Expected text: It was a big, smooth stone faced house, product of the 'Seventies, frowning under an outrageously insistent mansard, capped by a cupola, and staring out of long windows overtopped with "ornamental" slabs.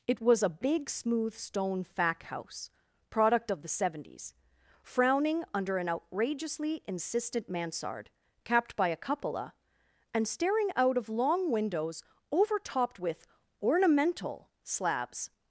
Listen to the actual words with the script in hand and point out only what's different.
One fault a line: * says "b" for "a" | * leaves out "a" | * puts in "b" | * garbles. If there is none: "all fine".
* says "fac" for "faced"